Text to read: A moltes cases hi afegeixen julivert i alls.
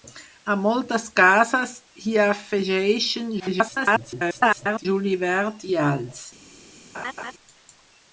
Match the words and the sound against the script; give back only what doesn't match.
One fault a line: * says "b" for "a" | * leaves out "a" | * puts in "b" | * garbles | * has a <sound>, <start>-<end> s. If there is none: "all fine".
* garbles
* has a laugh, 6.9-7.3 s